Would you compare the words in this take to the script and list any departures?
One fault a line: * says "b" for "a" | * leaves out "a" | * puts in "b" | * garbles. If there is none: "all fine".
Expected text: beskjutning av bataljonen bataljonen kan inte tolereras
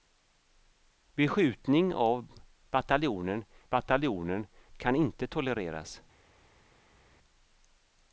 all fine